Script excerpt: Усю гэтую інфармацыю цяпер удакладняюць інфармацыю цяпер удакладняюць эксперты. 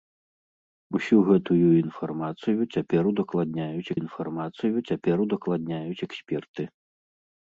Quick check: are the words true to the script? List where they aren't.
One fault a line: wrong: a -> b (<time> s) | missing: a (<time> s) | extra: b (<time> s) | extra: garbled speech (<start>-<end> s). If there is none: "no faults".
no faults